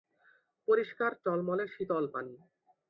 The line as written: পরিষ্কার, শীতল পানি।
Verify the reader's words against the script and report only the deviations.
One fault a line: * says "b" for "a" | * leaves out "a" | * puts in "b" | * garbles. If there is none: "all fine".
* puts in "টলমলে"